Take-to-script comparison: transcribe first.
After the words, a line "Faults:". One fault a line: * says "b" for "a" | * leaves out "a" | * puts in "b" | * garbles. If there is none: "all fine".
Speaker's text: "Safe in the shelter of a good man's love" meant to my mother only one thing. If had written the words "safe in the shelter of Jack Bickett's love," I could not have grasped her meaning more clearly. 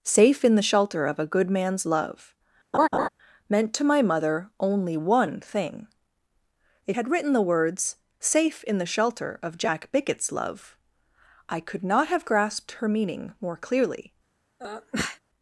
"Safe in the shelter of a good man's love" meant to my mother only one thing. If had written the words "safe in the shelter of Jack Bickett's love," I could not have grasped her meaning more clearly.
Faults:
all fine